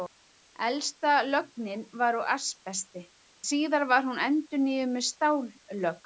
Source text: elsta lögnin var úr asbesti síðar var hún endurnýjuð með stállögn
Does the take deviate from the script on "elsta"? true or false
false